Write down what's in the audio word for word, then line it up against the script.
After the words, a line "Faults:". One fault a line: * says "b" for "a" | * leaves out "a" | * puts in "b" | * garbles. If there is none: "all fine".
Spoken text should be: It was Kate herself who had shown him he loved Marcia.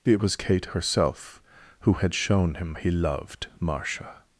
It was Kate herself who had shown him he loved Marcia.
Faults:
all fine